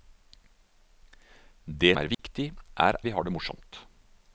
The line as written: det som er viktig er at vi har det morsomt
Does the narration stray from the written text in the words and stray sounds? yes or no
yes